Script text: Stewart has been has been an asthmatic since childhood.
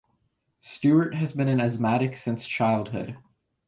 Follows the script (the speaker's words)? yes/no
no